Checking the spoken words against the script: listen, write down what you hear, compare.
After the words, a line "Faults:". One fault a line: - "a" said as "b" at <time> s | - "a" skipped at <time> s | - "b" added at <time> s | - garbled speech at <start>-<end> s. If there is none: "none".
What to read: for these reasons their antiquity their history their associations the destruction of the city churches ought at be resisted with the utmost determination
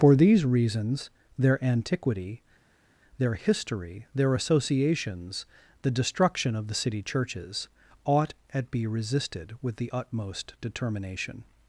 for these reasons their antiquity their history their associations the destruction of the city churches ought at be resisted with the utmost determination
Faults:
none